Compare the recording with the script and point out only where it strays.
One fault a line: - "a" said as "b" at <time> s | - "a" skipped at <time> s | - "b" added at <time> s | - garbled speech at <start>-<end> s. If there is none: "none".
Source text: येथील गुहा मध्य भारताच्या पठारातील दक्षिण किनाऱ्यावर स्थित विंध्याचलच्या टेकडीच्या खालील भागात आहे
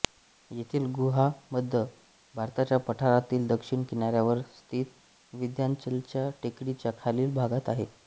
none